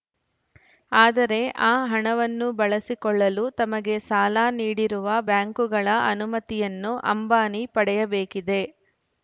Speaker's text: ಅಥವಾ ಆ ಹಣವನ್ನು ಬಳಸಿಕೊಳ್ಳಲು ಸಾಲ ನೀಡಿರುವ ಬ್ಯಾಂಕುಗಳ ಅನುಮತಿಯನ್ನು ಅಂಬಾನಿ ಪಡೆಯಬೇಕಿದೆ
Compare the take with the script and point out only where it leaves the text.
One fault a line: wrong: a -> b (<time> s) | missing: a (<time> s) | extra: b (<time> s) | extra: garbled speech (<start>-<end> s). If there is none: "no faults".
wrong: ಅಥವಾ -> ಆದರೆ (0.9 s)
extra: ತಮಗೆ (3.6 s)